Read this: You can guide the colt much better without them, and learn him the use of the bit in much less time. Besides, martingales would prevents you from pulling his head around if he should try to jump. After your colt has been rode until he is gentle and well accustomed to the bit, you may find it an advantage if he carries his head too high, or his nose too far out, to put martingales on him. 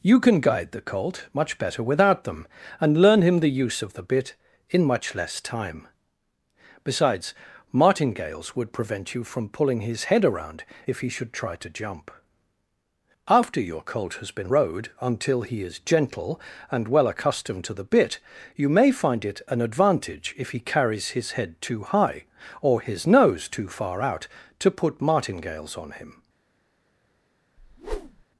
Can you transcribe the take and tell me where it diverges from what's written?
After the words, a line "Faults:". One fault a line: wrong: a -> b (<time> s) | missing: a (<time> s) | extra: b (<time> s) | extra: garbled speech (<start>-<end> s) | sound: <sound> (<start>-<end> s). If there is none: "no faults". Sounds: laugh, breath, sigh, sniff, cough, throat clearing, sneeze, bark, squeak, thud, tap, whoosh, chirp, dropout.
You can guide the colt much better without them, and learn him the use of the bit in much less time. Besides, martingales would prevent you from pulling his head around if he should try to jump. After your colt has been rode until he is gentle and well accustomed to the bit, you may find it an advantage if he carries his head too high, or his nose too far out, to put martingales on him.
Faults:
wrong: prevents -> prevent (8.7 s)
sound: whoosh (27.6-28.2 s)